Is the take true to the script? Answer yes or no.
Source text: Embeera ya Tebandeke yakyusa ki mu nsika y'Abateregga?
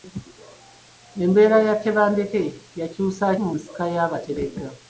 no